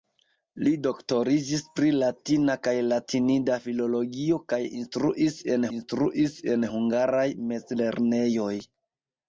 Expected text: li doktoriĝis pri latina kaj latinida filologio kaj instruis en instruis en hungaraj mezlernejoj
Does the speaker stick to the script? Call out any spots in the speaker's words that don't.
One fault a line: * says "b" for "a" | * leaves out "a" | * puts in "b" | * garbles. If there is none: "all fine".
all fine